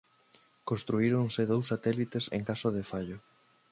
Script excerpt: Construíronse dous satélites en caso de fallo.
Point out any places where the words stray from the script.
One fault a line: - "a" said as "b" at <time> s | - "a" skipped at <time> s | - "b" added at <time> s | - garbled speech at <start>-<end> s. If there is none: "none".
none